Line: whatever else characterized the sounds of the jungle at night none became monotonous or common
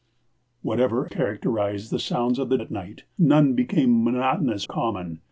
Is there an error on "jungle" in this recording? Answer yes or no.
yes